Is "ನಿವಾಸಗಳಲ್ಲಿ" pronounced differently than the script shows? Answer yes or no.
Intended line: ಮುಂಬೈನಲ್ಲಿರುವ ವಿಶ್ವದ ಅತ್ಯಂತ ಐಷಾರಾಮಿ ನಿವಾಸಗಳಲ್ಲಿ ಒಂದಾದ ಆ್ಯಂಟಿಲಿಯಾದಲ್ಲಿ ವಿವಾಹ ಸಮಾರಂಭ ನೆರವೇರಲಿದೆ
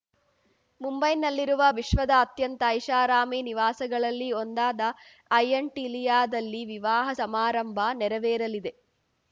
no